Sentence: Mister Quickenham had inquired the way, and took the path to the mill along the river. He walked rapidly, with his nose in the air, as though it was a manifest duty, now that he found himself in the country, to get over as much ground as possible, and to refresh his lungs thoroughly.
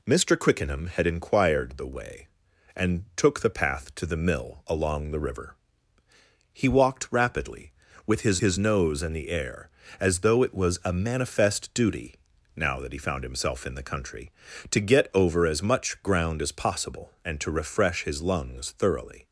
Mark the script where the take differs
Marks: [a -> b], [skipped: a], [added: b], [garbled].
Mister Quickenham had inquired the way, and took the path to the mill along the river. He walked rapidly, with his [added: his] nose in the air, as though it was a manifest duty, now that he found himself in the country, to get over as much ground as possible, and to refresh his lungs thoroughly.